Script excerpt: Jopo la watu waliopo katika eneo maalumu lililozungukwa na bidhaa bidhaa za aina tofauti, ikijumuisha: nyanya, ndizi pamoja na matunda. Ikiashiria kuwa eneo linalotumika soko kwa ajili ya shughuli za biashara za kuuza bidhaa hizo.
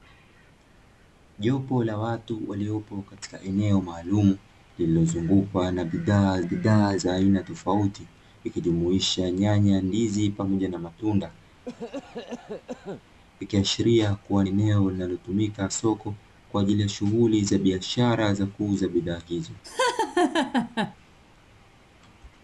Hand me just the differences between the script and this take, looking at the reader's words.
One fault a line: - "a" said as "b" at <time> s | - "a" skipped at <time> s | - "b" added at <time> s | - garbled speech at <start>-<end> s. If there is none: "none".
none